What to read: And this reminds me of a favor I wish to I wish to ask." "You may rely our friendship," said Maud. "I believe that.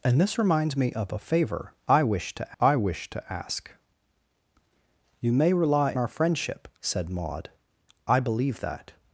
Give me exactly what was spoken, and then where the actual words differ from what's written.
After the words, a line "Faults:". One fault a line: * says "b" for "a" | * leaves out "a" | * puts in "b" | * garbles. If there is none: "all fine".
And this reminds me of a favor I wish to I wish to ask." "You may rely our friendship," said Maud. "I believe that.
Faults:
all fine